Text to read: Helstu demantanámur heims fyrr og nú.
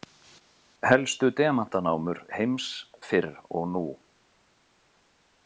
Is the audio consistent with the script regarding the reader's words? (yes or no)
yes